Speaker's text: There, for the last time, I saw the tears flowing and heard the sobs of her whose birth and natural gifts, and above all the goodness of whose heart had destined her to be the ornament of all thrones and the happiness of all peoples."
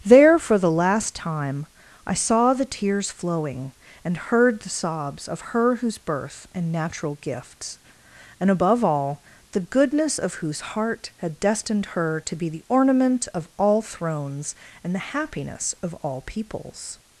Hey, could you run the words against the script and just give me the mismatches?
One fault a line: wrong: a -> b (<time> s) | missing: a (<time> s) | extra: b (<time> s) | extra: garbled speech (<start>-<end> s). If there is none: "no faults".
no faults